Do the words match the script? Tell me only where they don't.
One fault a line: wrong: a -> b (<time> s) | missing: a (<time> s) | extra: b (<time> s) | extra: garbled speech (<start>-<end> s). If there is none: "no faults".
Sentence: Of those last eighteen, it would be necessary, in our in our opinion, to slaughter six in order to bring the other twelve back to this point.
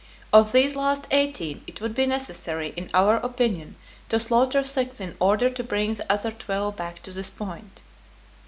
wrong: those -> these (0.5 s)
missing: in our (3.2 s)